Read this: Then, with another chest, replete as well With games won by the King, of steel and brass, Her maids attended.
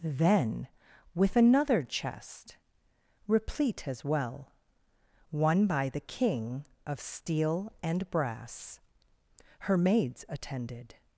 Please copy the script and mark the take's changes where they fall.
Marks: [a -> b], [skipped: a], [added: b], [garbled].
Then, with another chest, replete as well [skipped: With games] won by the King, of steel and brass, Her maids attended.